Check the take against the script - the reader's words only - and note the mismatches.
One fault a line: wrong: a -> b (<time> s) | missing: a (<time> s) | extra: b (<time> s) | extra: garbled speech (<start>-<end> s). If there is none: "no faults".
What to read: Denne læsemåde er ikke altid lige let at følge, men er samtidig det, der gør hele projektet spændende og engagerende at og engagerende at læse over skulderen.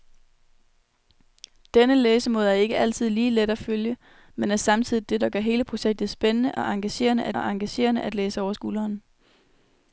no faults